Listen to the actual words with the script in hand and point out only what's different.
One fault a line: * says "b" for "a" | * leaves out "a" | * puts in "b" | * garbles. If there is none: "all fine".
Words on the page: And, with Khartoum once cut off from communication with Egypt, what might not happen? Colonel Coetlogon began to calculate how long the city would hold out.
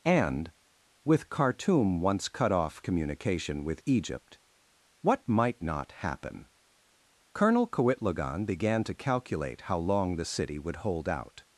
* leaves out "from"